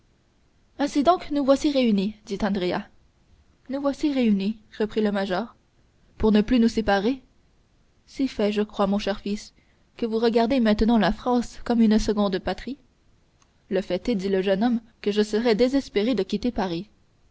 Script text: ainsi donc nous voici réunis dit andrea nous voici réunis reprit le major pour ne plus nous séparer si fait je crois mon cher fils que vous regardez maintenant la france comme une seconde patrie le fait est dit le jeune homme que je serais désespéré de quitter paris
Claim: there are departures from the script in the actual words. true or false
false